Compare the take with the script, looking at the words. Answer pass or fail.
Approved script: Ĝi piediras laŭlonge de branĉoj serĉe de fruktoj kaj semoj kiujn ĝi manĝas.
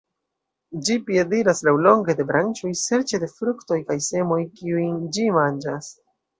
pass